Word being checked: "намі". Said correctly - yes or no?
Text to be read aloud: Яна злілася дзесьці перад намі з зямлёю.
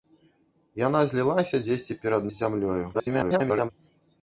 no